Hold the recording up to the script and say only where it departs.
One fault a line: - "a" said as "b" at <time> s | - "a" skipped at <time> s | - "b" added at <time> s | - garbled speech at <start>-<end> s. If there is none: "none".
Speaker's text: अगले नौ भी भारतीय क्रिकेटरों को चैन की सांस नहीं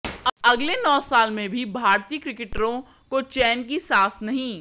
- "साल में" added at 1.0 s